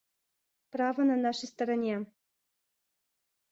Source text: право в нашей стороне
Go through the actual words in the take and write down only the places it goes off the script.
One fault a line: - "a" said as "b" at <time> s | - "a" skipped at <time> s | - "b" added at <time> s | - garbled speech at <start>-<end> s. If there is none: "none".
- "в" said as "на" at 1.0 s